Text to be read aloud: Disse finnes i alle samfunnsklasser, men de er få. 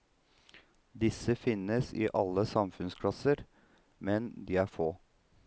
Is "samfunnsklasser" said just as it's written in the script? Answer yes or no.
yes